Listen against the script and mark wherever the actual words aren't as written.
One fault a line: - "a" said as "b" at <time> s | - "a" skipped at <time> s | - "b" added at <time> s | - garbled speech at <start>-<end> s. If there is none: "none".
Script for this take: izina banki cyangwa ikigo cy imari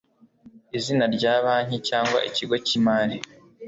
- "rya" added at 1.1 s